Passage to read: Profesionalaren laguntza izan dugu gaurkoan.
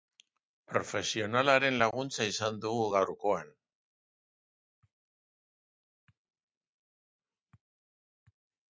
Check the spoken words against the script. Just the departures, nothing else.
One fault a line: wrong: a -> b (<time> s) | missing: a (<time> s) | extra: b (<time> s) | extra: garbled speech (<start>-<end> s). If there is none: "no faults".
no faults